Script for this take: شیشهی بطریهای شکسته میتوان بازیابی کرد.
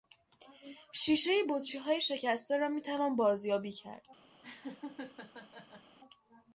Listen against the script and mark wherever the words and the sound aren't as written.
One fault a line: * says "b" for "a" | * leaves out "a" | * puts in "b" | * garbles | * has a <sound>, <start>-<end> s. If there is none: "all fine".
* puts in "را"
* has a laugh, 4.4-6.0 s